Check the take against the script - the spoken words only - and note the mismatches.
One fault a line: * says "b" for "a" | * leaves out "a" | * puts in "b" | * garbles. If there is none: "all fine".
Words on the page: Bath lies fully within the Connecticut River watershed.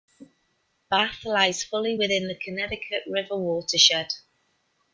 all fine